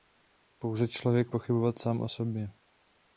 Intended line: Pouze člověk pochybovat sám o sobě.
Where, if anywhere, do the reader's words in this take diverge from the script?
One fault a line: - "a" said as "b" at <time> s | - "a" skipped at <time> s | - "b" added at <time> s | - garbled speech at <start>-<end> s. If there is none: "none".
none